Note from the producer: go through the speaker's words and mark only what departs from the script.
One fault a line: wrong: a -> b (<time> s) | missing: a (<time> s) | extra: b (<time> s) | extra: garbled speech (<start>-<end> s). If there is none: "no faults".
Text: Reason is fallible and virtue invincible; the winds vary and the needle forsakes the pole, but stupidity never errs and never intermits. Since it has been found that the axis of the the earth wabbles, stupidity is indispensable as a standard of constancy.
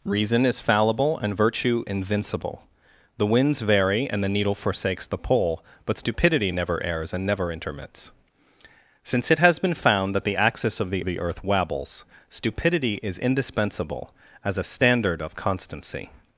no faults